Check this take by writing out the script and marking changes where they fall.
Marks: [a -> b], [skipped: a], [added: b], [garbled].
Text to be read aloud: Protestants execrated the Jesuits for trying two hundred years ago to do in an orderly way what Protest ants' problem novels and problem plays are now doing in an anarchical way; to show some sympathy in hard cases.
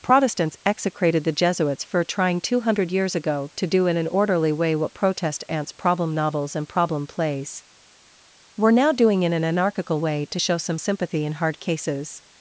Protestants execrated the Jesuits for trying two hundred years ago to do in an orderly way what Protest ants' problem novels and problem plays [are -> were] now doing in an anarchical way; to show some sympathy in hard cases.